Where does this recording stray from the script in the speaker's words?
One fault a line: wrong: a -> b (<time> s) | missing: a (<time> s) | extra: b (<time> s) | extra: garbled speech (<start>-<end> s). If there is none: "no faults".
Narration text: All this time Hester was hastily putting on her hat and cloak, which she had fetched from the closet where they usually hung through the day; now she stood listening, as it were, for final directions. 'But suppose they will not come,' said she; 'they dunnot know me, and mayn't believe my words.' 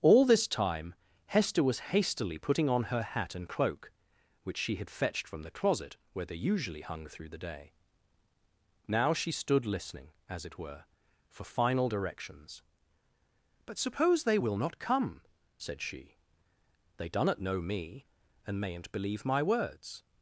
no faults